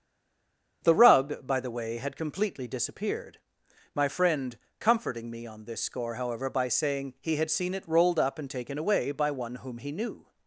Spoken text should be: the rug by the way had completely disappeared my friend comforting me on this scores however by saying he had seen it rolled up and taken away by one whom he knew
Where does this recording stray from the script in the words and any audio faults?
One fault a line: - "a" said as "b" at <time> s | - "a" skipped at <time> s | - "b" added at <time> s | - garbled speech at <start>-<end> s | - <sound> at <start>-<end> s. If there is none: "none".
- "scores" said as "score" at 5.8 s